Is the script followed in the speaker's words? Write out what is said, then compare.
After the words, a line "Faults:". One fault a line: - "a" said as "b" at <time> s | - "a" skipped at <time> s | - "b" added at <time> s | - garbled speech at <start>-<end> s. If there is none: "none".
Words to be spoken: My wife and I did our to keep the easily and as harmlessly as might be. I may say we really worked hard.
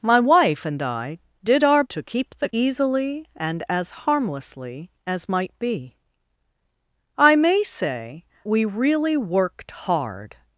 My wife and I did our to keep the easily and as harmlessly as might be. I may say we really worked hard.
Faults:
none